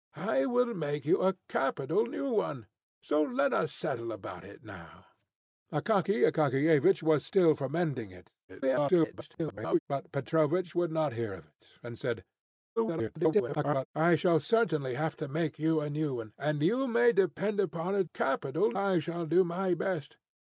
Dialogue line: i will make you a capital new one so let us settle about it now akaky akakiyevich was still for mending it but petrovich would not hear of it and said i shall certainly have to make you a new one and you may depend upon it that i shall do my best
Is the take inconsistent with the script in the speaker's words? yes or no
yes